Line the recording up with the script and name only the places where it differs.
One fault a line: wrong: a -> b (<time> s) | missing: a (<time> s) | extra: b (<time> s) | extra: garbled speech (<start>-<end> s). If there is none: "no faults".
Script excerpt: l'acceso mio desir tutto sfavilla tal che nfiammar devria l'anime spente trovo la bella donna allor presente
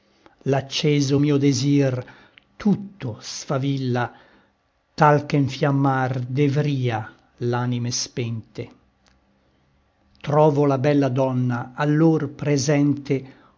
no faults